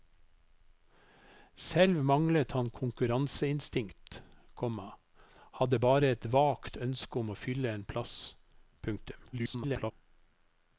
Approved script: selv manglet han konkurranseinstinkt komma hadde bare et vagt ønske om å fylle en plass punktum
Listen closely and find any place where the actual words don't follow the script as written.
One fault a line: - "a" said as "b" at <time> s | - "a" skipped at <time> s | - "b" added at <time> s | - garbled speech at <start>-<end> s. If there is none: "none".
- garbled speech at 9.3-9.9 s